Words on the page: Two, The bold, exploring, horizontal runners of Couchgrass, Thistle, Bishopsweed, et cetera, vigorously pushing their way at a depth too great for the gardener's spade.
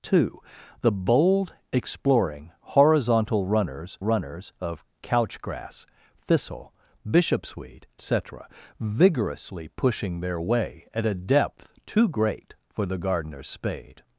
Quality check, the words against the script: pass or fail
fail